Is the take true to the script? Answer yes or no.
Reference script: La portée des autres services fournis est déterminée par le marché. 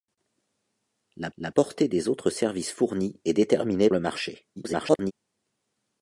no